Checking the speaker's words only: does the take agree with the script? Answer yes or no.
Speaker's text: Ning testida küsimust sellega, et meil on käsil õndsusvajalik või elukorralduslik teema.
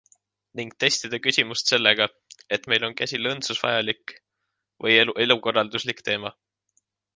yes